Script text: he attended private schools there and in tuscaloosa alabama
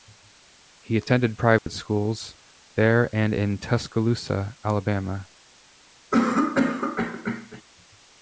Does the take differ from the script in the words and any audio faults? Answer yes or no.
yes